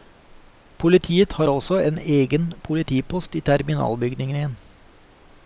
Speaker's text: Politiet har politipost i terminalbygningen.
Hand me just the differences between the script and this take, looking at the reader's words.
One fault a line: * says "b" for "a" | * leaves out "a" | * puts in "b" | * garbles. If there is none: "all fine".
* puts in "også en egen"